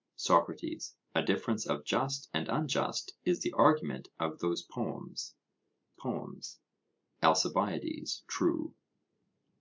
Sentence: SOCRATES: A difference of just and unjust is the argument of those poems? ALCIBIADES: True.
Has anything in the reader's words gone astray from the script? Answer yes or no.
yes